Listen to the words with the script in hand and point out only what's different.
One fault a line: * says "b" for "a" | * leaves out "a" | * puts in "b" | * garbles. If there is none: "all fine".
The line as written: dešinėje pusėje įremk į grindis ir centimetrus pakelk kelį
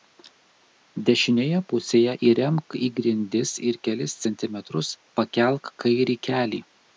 * puts in "kelis"
* puts in "kairį"